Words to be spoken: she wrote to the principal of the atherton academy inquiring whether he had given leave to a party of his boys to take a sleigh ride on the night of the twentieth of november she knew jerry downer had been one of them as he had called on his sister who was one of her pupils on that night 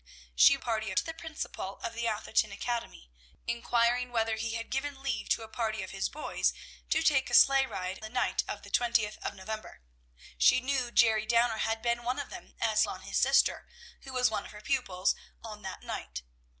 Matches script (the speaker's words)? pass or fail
fail